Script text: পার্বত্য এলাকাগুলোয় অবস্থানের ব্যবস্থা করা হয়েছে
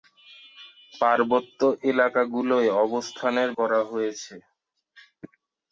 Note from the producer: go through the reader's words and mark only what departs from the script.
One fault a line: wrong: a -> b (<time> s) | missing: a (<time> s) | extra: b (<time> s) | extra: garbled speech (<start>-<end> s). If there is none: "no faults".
missing: ব্যবস্থা (3.5 s)